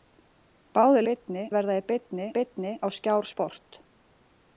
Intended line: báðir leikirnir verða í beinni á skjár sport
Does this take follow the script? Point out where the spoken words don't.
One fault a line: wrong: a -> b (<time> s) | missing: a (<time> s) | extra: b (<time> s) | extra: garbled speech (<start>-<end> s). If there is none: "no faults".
wrong: leikirnir -> beinni (1.1 s)
extra: beinni (2.4 s)